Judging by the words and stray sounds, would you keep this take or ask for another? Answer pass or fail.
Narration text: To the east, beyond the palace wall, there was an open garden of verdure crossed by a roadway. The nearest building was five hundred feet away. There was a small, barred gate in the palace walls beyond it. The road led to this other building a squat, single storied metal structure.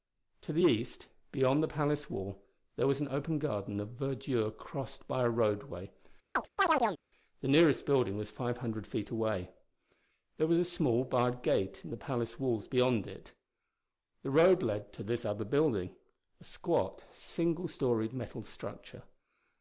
fail